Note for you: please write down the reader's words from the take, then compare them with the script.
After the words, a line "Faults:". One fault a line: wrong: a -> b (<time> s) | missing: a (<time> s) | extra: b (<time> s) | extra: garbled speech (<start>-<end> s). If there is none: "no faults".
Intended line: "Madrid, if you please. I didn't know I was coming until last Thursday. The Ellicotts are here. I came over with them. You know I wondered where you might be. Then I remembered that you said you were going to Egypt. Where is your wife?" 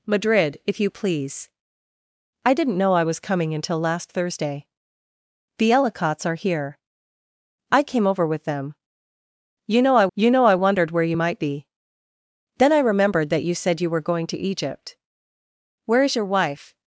"Madrid, if you please. I didn't know I was coming until last Thursday. The Ellicotts are here. I came over with them. You know I you know I wondered where you might be. Then I remembered that you said you were going to Egypt. Where is your wife?"
Faults:
extra: you know I (10.2 s)